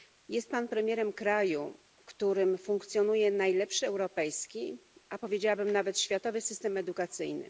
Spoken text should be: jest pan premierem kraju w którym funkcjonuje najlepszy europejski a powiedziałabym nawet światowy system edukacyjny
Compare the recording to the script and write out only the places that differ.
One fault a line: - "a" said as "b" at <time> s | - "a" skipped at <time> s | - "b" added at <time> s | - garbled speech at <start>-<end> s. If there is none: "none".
none